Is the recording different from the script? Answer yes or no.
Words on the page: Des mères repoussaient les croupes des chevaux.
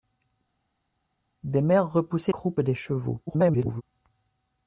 yes